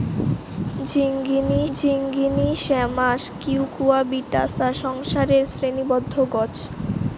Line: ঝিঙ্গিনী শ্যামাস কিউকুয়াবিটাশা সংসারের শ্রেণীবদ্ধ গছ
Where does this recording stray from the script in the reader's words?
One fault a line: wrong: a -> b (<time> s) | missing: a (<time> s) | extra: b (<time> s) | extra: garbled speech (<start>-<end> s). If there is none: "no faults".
extra: ঝিঙ্গিনী (1.7 s)